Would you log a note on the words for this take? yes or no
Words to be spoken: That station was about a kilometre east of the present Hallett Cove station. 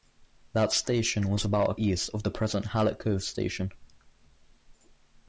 yes